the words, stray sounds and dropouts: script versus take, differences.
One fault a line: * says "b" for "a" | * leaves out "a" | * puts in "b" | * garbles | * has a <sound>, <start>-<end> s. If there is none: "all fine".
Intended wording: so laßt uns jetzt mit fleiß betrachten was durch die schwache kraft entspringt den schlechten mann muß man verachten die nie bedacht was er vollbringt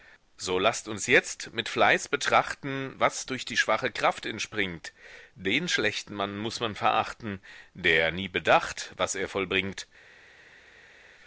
* says "der" for "die"